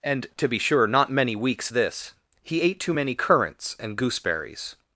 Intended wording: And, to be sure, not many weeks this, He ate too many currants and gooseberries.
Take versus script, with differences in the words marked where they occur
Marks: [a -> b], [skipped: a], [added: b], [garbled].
And, to be sure, not many weeks this, He ate too many currants and gooseberries.